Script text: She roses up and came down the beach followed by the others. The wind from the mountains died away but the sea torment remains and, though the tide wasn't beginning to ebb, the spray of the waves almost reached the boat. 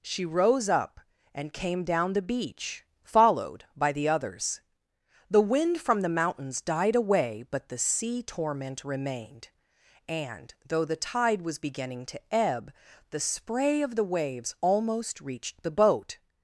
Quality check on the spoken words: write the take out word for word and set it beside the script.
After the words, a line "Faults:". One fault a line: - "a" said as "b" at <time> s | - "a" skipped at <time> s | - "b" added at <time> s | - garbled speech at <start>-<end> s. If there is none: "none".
She rose up and came down the beach followed by the others. The wind from the mountains died away but the sea torment remained and, though the tide was beginning to ebb, the spray of the waves almost reached the boat.
Faults:
- "roses" said as "rose" at 0.2 s
- "remains" said as "remained" at 8.8 s
- "wasn't" said as "was" at 11.4 s